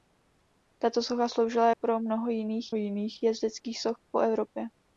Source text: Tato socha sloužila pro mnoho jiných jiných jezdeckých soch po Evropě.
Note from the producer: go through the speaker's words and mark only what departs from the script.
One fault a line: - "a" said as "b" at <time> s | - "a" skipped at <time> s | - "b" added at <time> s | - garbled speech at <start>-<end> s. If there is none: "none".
none